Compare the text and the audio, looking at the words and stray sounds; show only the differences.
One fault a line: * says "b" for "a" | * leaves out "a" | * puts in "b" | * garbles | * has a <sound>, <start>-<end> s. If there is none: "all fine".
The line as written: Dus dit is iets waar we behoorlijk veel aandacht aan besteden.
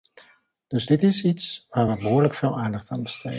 all fine